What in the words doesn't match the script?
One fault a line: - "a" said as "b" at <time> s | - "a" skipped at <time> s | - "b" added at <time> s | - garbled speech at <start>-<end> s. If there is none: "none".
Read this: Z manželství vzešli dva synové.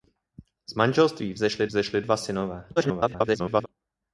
- "vzešli" added at 1.7 s
- garbled speech at 2.8-3.7 s